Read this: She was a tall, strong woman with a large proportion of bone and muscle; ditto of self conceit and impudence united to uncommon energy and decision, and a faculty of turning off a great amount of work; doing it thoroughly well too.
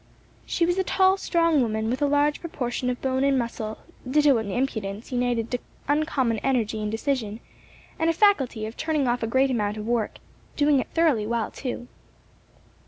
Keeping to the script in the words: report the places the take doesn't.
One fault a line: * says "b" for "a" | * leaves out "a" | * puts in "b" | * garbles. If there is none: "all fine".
* leaves out "of self conceit"